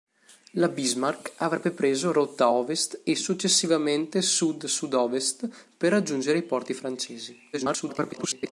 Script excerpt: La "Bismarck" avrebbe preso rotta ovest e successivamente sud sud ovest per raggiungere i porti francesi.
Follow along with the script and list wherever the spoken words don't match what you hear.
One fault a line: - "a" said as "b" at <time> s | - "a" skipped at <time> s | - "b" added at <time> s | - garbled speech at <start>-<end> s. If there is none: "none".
- garbled speech at 7.5-8.5 s